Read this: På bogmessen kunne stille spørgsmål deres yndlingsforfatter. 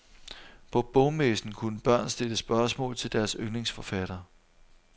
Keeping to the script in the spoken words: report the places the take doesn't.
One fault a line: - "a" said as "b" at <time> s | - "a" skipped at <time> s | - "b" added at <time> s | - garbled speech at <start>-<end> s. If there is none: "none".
- "børn" added at 1.8 s
- "til" added at 3.0 s